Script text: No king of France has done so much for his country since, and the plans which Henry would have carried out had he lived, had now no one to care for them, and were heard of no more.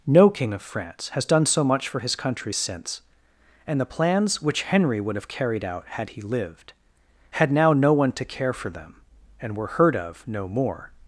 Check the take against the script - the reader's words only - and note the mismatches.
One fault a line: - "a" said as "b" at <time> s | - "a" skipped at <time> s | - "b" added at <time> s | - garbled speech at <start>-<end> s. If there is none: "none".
none